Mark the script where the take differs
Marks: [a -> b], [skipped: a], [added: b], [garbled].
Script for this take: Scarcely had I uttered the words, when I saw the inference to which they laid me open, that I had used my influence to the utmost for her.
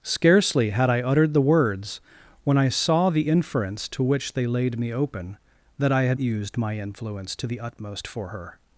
Scarcely had I uttered the words, when I saw the inference to which they laid me open, that I had used my influence to the utmost for her.